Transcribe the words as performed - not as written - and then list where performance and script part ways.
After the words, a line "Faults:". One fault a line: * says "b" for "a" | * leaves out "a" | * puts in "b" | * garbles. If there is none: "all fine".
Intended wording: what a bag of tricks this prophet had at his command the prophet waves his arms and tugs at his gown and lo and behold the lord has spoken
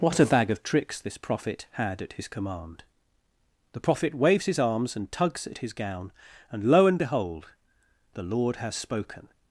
what a bag of tricks this prophet had at his command the prophet waves his arms and tugs at his gown and lo and behold the lord has spoken
Faults:
all fine